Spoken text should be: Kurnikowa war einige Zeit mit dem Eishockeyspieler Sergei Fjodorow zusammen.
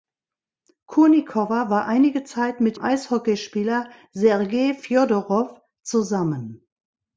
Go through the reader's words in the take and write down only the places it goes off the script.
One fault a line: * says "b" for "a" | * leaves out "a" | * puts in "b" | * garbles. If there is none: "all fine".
* leaves out "dem"